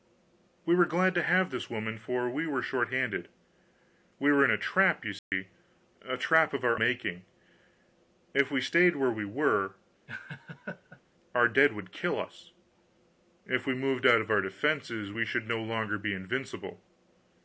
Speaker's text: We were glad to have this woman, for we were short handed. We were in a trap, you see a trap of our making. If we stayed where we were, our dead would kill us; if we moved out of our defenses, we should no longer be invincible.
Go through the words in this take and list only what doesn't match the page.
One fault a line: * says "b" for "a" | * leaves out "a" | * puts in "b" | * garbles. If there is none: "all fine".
all fine